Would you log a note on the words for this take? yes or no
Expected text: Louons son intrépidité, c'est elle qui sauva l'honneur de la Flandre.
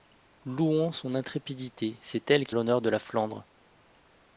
yes